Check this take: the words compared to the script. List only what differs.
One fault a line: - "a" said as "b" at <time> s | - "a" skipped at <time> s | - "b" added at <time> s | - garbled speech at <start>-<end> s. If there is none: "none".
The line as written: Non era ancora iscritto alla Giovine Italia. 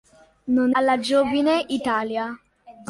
- "era ancora iscritto" skipped at 0.7 s